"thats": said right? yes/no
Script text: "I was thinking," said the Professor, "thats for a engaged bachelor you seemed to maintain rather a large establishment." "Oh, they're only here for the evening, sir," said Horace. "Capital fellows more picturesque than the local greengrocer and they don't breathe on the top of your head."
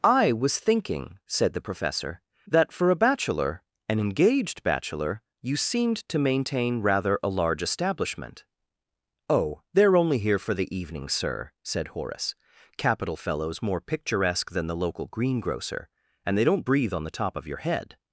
no